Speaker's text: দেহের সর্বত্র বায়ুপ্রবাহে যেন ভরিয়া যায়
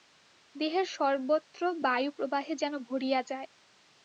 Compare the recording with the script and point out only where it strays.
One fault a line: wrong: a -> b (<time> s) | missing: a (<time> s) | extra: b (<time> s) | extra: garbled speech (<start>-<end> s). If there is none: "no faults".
no faults